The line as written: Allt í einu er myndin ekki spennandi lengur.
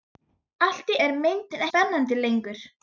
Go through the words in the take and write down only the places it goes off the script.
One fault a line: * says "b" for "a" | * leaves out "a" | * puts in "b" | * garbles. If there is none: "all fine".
* leaves out "einu"
* leaves out "ekki"